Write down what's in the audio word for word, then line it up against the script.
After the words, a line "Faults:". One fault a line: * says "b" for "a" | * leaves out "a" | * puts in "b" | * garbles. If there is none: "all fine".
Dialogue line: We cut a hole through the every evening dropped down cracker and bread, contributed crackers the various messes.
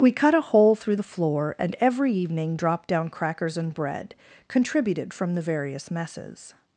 We cut a hole through the floor, and every evening dropped down crackers and bread, contributed from the various messes.
Faults:
* puts in "floor and"
* says "crackers" for "cracker"
* says "from" for "crackers"